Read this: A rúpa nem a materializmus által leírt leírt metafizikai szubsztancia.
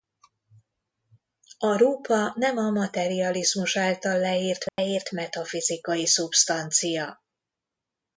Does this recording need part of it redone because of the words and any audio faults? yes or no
yes